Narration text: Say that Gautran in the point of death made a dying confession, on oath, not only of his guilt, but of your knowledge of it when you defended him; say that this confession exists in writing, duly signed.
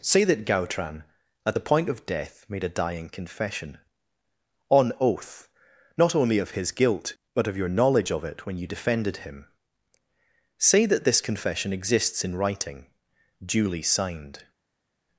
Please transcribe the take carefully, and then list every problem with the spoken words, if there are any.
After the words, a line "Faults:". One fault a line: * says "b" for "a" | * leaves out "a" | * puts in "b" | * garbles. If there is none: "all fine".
Say that Gautran at the point of death made a dying confession, on oath, not only of his guilt, but of your knowledge of it when you defended him; say that this confession exists in writing, duly signed.
Faults:
* says "at" for "in"